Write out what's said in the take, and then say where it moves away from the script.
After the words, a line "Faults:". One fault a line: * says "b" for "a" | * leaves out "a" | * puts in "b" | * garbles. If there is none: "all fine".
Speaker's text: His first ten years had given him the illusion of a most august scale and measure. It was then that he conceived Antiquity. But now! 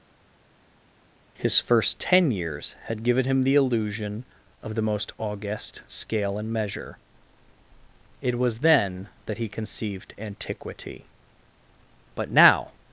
His first ten years had given him the illusion of the most august scale and measure. It was then that he conceived Antiquity. But now!
Faults:
* says "the" for "a"